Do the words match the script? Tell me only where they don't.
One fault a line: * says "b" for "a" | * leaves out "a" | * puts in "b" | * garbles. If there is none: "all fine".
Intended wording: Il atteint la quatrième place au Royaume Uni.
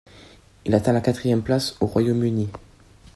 all fine